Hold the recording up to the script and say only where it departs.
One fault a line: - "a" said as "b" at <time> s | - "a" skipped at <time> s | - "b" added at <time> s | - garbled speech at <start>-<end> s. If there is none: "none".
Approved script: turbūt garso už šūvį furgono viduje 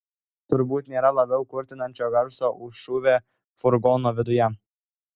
- "nėra labiau kurtinančio" added at 0.9 s